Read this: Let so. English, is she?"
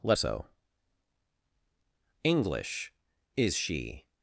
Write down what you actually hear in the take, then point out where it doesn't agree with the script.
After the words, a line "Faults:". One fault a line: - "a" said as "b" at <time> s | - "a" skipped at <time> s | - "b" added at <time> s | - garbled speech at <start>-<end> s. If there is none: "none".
Let so. English, is she?"
Faults:
none